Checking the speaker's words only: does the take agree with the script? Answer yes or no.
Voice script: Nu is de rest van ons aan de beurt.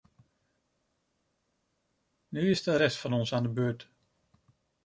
yes